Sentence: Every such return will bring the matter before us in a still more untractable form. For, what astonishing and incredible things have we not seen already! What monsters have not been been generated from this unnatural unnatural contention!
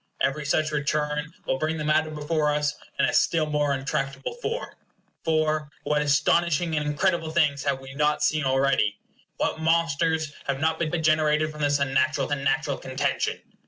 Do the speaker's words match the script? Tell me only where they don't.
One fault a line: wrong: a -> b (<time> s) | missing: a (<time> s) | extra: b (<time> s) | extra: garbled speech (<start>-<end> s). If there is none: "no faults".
no faults